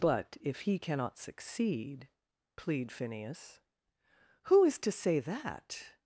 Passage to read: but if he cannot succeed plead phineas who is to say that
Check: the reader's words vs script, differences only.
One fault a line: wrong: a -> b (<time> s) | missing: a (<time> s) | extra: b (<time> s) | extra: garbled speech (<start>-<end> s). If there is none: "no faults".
no faults